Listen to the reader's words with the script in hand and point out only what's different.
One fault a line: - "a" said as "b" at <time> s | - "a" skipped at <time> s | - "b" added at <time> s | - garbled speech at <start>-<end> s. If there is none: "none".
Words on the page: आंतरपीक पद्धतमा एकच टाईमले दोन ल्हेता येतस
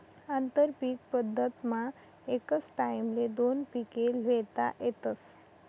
- "पिके" added at 3.7 s